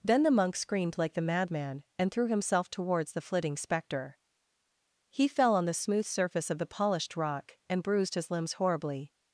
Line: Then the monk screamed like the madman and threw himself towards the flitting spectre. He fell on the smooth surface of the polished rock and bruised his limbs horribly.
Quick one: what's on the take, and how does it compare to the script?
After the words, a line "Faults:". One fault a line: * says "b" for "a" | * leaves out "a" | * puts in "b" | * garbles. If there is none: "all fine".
Then the monk screamed like the madman and threw himself towards the flitting spectre. He fell on the smooth surface of the polished rock and bruised his limbs horribly.
Faults:
all fine